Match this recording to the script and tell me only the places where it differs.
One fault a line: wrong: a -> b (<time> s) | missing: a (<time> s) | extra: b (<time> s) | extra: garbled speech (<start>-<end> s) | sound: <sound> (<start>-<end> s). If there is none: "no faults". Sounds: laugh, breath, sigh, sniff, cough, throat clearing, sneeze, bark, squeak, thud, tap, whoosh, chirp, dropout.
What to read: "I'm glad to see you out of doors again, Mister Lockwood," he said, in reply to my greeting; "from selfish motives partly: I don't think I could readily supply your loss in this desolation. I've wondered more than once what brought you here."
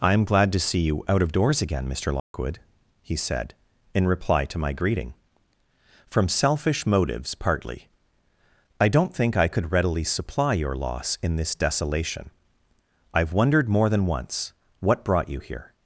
sound: dropout (2.2-2.3 s)